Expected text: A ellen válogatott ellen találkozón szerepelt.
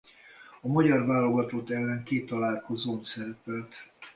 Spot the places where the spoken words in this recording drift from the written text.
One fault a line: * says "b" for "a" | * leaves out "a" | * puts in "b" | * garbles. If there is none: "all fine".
* says "magyar" for "ellen"
* puts in "két"